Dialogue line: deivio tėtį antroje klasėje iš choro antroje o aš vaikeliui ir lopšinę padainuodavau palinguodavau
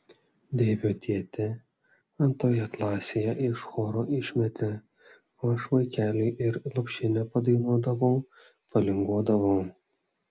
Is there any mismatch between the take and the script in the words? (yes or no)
yes